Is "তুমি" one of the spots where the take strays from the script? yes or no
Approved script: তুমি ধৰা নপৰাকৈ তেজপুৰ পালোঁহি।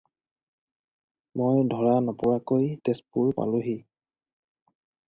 yes